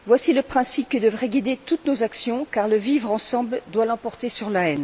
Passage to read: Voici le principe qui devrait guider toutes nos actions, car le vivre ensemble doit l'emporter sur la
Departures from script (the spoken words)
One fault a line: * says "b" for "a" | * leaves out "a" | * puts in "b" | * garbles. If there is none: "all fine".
all fine